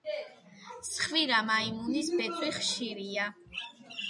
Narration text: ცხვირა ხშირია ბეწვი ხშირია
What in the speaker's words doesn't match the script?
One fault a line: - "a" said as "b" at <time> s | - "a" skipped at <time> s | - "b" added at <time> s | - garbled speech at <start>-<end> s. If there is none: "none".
- "ხშირია" said as "მაიმუნის" at 1.5 s